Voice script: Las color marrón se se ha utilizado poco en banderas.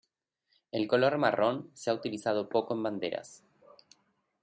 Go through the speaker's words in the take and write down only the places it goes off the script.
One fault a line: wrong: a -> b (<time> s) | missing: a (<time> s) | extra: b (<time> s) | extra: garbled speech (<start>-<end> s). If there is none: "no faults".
wrong: Las -> El (0.7 s)
missing: se (1.9 s)